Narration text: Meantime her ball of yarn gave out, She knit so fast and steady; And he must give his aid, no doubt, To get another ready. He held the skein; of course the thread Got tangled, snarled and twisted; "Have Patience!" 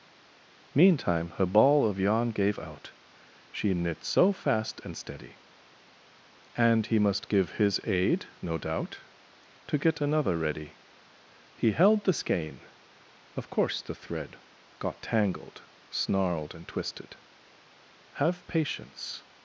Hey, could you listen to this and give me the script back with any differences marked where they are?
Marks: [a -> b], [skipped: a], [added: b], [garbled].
Meantime her ball of yarn gave out, She knit so fast and steady; And he must give his aid, no doubt, To get another ready. He held the skein; of course the thread Got tangled, snarled and twisted; "Have Patience!"